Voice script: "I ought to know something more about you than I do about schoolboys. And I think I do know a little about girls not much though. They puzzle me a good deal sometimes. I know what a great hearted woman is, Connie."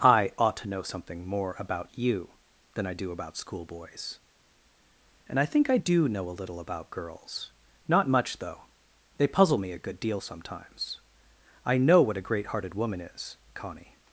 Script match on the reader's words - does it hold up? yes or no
yes